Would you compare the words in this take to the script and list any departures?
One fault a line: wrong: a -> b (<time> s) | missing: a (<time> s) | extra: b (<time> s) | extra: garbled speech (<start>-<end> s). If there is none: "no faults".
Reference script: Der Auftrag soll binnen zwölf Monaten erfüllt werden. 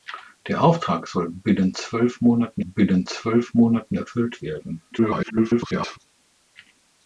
extra: binnen zwölf Monaten (2.6 s)
extra: garbled speech (4.9-6.0 s)